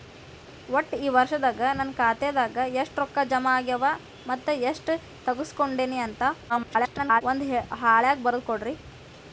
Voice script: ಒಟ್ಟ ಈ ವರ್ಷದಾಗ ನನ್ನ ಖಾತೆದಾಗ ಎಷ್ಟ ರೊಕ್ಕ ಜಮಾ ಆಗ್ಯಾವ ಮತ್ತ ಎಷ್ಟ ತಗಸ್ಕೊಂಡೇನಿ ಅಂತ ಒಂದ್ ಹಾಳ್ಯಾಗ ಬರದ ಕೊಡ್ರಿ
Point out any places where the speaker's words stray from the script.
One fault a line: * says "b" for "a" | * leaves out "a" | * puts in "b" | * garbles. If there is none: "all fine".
* garbles